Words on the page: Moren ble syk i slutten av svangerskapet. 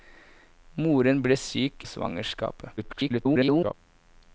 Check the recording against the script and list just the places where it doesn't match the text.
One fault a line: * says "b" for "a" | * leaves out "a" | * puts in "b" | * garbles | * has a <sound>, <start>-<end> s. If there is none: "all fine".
* leaves out "i slutten"
* garbles